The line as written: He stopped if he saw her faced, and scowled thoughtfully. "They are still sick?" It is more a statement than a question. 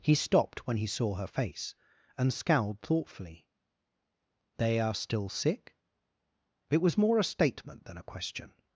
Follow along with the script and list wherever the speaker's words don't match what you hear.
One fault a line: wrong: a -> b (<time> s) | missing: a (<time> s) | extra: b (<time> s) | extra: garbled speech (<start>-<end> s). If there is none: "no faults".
wrong: if -> when (0.7 s)
wrong: faced -> face (1.3 s)
wrong: is -> was (6.8 s)